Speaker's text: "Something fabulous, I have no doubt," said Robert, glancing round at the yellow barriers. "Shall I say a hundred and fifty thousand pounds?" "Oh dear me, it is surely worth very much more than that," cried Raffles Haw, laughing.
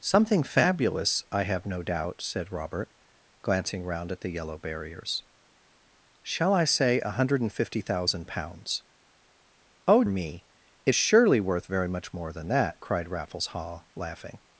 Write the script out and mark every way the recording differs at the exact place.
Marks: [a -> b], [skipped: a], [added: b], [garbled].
"Something fabulous, I have no doubt," said Robert, glancing round at the yellow barriers. "Shall I say a hundred and fifty thousand pounds?" "Oh [skipped: dear] me, it [skipped: is] surely worth very much more than that," cried Raffles Haw, laughing.